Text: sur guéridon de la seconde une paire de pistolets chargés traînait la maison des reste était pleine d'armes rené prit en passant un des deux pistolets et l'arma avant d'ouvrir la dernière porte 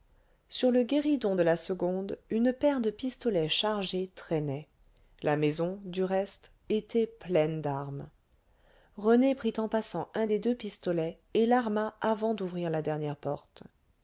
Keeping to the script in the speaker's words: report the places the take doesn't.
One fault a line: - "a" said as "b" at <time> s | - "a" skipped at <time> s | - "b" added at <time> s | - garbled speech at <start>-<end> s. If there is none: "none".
- "le" added at 0.7 s
- "des" said as "du" at 5.8 s